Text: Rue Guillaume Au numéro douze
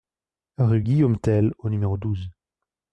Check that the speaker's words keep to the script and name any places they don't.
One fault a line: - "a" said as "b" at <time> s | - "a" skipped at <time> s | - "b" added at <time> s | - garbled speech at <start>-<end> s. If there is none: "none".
- "Tell" added at 1.2 s